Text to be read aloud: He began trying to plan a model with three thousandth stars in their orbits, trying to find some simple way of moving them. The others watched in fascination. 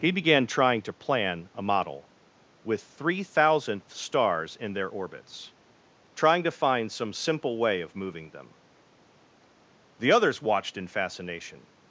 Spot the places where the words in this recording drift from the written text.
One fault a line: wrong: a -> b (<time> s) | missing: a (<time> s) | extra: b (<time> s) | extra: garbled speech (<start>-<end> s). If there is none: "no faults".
no faults